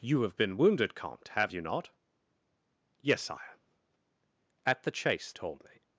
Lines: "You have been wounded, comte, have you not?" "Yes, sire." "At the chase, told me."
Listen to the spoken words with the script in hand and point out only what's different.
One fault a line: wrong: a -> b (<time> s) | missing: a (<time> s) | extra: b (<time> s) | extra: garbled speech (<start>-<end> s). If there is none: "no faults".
no faults